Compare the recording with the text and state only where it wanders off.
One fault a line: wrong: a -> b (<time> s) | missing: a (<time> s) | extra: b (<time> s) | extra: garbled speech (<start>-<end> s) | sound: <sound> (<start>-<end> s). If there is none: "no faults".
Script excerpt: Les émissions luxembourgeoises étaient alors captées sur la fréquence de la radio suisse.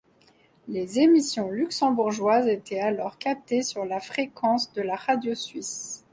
no faults